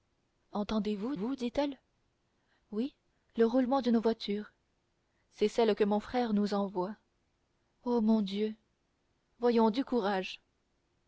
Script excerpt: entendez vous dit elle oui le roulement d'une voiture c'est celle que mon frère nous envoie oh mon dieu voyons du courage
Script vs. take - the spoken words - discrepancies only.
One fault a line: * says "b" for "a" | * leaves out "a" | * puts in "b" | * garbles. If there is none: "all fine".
* puts in "vous"